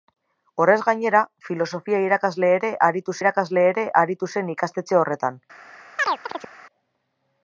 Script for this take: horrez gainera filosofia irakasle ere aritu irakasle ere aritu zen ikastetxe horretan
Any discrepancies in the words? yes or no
no